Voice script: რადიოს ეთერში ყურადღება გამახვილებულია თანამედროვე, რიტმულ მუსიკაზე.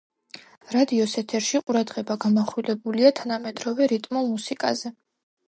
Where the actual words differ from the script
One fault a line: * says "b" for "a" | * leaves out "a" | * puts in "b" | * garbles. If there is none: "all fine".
all fine